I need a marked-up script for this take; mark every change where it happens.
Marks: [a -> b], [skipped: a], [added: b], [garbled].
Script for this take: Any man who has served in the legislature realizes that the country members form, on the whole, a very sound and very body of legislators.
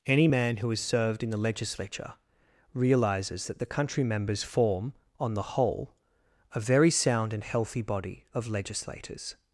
Any man who has served in the legislature realizes that the country members form, on the whole, a very sound and [very -> healthy] body of legislators.